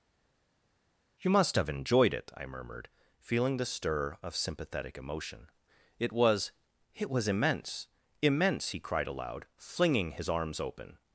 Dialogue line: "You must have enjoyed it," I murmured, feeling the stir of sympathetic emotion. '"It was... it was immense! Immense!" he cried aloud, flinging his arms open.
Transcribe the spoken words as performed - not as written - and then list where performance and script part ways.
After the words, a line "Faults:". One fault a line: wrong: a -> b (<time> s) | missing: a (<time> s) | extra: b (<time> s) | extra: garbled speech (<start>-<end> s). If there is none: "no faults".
"You must have enjoyed it," I murmured, feeling the stir of sympathetic emotion. '"It was... it was immense! Immense!" he cried aloud, flinging his arms open.
Faults:
no faults